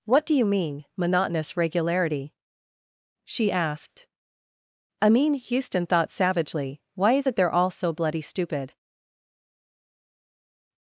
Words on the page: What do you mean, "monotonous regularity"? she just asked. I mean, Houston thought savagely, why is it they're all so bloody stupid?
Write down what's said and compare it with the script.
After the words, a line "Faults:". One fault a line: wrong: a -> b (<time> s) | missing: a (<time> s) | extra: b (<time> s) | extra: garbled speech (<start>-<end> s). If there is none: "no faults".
What do you mean, "monotonous regularity"? she asked. I mean, Houston thought savagely, why is it they're all so bloody stupid?
Faults:
missing: just (3.5 s)